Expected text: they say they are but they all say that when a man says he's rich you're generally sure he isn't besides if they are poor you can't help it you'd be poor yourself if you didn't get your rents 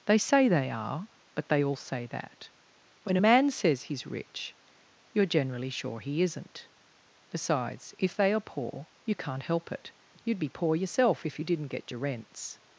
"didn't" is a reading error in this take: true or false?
false